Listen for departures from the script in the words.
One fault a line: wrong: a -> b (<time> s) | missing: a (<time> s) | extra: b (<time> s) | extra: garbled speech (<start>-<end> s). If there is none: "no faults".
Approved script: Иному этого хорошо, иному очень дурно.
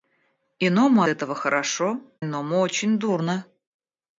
no faults